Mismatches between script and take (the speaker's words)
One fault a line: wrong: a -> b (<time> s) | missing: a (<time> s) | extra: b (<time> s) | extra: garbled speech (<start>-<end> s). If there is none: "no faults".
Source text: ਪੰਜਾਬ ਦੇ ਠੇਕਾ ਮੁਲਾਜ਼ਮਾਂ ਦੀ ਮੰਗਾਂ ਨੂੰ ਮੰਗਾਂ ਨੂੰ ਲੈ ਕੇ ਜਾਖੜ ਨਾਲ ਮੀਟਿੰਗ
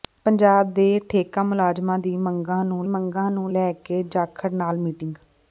no faults